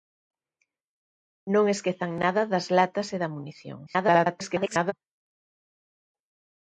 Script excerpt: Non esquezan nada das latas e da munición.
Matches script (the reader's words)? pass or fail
fail